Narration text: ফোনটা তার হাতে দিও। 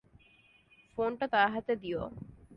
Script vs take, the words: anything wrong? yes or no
no